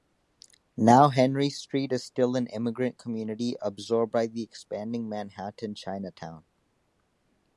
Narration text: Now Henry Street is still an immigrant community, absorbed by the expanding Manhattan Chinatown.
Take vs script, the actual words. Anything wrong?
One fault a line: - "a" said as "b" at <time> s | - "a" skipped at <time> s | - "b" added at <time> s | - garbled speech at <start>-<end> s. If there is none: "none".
none